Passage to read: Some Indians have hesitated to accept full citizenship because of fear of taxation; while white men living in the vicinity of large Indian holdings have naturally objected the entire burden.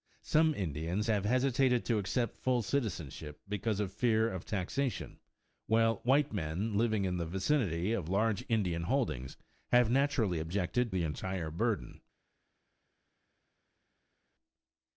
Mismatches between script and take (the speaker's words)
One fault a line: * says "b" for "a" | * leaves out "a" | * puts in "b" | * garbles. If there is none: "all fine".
all fine